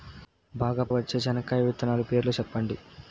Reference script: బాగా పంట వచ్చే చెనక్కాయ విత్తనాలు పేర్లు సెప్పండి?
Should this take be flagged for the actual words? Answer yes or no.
yes